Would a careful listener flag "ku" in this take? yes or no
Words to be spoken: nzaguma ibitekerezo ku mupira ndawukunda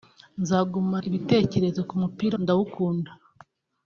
no